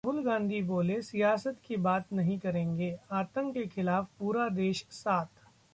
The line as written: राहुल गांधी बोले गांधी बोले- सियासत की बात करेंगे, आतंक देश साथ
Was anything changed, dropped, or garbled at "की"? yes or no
no